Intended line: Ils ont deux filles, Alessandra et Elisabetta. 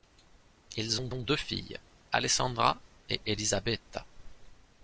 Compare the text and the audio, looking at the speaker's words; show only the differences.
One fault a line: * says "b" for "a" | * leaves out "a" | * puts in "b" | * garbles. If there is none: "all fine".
* puts in "ont"